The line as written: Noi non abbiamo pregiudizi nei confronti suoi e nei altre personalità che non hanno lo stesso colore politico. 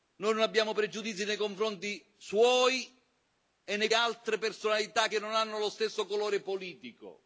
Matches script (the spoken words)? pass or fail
pass